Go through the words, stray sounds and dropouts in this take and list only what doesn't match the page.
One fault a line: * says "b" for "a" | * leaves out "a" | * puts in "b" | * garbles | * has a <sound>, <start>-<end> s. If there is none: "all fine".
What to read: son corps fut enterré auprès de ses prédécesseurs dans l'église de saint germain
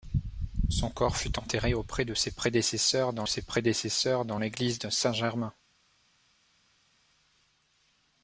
* puts in "ses prédécesseurs dans"